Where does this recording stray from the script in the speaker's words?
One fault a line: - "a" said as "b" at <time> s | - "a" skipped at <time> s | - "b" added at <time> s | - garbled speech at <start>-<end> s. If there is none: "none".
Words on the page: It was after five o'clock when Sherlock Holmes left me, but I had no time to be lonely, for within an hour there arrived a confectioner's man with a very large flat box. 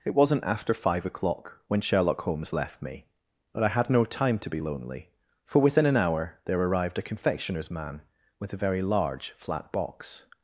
- "was" said as "wasn't" at 0.1 s